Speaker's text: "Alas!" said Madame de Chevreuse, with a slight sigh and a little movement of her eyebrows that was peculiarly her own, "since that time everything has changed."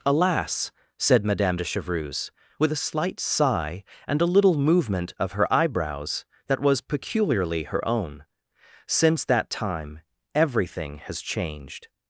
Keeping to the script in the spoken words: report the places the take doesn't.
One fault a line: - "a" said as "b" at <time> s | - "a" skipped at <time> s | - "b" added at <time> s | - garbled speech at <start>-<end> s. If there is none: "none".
none